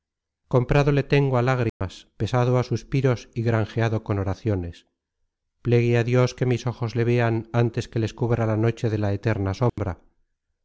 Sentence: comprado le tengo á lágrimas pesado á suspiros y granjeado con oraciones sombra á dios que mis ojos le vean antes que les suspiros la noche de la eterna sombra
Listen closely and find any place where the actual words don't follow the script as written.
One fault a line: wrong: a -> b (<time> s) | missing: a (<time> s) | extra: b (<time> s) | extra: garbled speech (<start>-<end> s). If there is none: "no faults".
wrong: sombra -> plegue (5.7 s)
wrong: suspiros -> cubra (8.2 s)